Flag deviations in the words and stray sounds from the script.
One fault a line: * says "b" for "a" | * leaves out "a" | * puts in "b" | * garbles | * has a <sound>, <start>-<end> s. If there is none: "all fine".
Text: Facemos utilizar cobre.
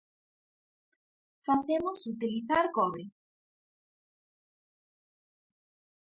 all fine